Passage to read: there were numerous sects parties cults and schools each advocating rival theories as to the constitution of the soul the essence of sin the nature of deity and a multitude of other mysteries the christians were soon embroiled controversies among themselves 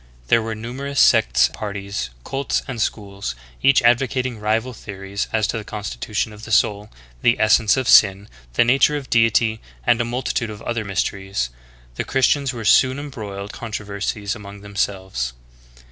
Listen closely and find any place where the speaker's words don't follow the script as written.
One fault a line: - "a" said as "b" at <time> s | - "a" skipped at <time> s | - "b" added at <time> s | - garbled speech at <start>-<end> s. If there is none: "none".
none